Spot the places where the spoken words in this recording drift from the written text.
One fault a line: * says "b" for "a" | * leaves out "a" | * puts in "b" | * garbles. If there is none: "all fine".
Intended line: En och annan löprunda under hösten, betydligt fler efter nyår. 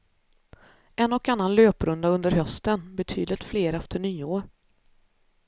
all fine